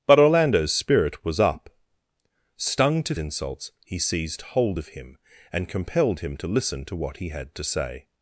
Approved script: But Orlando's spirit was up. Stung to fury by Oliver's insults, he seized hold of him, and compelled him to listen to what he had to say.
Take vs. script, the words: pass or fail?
fail